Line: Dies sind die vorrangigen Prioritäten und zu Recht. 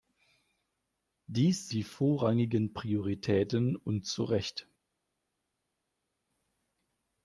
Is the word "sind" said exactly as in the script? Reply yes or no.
no